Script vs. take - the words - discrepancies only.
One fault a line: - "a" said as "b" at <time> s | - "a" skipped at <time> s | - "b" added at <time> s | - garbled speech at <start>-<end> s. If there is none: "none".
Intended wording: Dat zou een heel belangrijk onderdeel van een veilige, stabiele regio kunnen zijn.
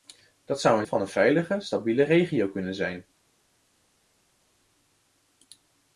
- "heel belangrijk onderdeel" skipped at 0.8 s